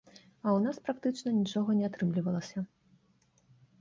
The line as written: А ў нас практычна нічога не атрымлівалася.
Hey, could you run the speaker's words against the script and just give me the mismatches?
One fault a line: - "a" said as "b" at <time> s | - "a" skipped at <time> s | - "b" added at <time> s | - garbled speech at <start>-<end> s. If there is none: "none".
none